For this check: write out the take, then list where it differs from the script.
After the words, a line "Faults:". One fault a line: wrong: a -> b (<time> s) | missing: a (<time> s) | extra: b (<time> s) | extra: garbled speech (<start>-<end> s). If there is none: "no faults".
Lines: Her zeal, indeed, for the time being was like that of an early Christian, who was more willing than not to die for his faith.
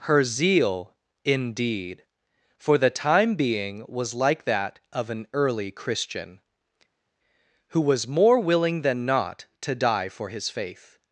Her zeal, indeed, for the time being was like that of an early Christian, who was more willing than not to die for his faith.
Faults:
no faults